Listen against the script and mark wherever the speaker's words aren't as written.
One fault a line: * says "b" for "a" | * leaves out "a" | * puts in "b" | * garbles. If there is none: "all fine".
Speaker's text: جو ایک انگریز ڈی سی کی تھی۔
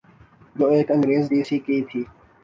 all fine